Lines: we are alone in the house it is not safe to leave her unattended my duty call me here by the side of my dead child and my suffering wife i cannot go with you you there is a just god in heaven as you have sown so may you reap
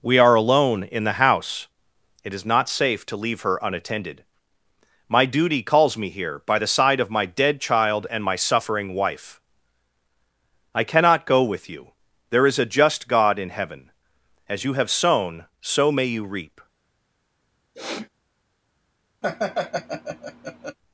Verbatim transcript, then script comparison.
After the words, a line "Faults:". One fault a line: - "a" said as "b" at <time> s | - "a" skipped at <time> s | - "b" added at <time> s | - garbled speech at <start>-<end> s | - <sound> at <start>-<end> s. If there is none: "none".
we are alone in the house it is not safe to leave her unattended my duty calls me here by the side of my dead child and my suffering wife i cannot go with you there is a just god in heaven as you have sown so may you reap
Faults:
- "call" said as "calls" at 5.6 s
- "you" skipped at 11.9 s
- sniff at 17.7-18.1 s
- laugh at 19.2-20.8 s